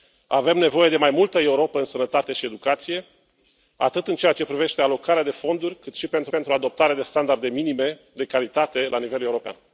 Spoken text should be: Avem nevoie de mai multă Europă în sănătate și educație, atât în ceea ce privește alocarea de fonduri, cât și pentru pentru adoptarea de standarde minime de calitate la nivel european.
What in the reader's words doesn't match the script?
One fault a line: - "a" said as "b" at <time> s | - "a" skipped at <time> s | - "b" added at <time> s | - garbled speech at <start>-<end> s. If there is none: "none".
none